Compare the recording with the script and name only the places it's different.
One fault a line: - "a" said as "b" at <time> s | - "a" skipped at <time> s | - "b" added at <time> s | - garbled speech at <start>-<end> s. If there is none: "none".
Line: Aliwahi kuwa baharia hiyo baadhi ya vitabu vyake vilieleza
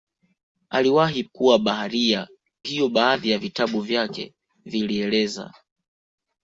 none